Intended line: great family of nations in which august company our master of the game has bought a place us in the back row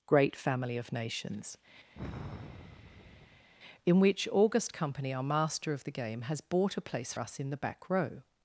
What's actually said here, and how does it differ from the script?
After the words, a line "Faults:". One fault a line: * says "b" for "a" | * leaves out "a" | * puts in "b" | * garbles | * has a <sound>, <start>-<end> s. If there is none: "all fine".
great family of nations in which august company our master of the game has bought a place us in the back row
Faults:
* has a sigh, 1.9-3.5 s